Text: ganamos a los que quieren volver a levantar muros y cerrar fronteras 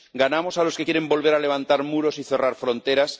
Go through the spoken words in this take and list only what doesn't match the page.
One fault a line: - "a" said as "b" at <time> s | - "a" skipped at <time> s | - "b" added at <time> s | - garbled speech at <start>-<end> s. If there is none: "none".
none